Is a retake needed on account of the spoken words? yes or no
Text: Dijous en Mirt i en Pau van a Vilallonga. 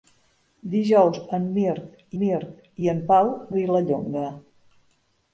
yes